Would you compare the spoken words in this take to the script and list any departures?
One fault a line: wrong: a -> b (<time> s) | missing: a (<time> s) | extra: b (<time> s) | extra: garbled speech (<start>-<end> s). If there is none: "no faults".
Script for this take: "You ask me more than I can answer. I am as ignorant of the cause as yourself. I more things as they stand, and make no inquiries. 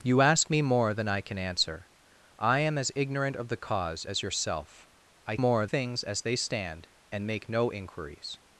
no faults